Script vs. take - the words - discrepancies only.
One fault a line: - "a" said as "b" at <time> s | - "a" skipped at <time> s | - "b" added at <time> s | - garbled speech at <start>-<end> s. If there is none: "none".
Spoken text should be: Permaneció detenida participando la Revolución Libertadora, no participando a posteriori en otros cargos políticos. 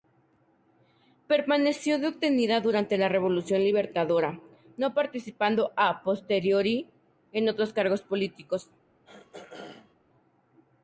- "participando" said as "durante" at 2.6 s